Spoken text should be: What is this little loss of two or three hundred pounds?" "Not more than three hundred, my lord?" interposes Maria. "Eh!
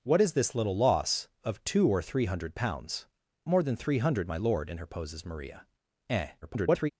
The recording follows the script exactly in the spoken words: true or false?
false